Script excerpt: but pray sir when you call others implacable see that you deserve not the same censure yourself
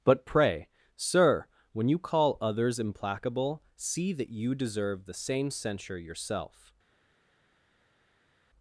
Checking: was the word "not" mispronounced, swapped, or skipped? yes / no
yes